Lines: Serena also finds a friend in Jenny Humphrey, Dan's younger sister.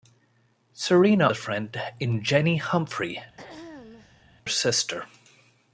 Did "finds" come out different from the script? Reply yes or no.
yes